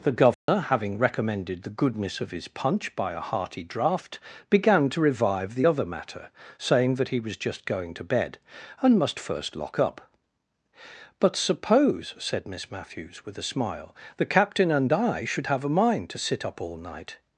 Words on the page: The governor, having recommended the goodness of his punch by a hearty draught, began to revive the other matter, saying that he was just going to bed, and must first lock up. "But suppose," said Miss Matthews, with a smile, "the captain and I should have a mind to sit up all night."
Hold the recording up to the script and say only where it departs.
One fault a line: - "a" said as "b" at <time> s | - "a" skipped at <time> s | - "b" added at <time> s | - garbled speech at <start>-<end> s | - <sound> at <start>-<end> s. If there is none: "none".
- dropout at 0.3-0.5 s